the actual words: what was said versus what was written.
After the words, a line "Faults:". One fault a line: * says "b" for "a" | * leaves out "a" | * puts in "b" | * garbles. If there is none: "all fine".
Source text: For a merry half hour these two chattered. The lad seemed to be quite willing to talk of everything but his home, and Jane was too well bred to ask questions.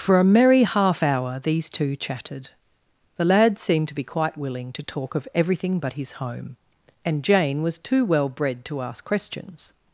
For a merry half hour these two chatted. The lad seemed to be quite willing to talk of everything but his home, and Jane was too well bred to ask questions.
Faults:
* says "chatted" for "chattered"